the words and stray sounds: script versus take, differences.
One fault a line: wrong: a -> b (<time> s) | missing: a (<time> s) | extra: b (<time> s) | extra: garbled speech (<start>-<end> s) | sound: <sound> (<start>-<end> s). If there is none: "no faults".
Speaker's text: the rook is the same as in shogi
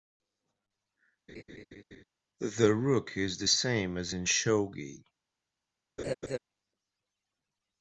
sound: laugh (1.3-2.0 s)
sound: laugh (6.0-6.4 s)